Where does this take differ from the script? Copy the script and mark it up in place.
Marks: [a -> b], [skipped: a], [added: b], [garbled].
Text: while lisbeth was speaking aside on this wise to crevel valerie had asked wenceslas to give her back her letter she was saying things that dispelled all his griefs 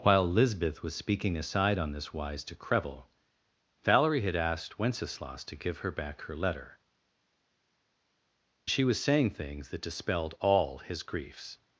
while lisbeth was speaking aside on this wise to crevel valerie had asked wenceslas to give her back her letter she was saying things that dispelled all his griefs